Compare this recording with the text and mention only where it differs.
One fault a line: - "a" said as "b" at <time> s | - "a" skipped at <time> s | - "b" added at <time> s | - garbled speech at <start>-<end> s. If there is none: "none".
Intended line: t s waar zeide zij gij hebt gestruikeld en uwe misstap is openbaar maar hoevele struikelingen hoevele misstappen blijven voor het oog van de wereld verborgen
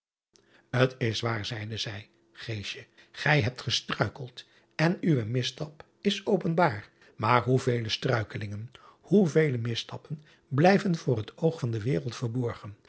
none